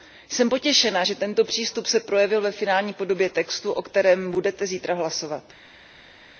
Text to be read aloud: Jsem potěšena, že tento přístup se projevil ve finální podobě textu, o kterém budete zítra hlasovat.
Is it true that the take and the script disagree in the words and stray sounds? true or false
false